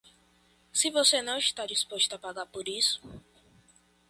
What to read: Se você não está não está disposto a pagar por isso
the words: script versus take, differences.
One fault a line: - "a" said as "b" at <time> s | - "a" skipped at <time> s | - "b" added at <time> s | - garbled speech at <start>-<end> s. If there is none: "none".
- "não está" skipped at 1.7 s